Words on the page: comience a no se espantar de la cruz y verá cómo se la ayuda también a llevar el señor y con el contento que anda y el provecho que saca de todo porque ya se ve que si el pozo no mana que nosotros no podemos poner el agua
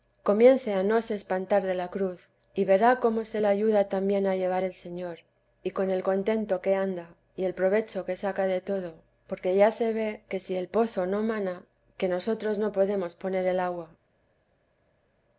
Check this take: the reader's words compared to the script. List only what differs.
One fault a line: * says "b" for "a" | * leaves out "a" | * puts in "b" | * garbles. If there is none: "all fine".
all fine